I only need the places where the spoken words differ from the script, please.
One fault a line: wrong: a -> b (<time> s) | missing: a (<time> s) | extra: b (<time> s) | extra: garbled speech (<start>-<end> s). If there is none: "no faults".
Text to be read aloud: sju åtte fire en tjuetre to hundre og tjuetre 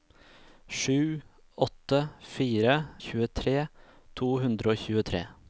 missing: en (2.8 s)